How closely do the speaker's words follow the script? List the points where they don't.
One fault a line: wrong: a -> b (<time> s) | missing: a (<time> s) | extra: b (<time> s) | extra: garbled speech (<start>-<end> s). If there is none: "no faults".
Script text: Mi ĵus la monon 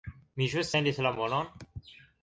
extra: sendis (0.7 s)